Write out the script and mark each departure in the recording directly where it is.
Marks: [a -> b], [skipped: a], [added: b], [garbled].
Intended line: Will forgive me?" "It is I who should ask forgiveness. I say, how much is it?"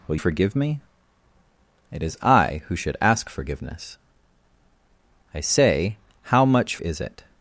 Will forgive me?" "It is I who should ask forgiveness. I say, how much is it?"